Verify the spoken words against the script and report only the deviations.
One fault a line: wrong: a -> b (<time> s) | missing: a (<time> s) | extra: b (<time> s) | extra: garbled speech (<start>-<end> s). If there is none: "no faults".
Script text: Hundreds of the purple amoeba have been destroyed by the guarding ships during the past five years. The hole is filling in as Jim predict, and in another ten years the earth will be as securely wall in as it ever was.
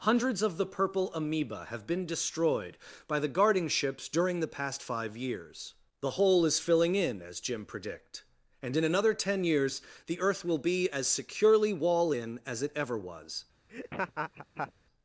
no faults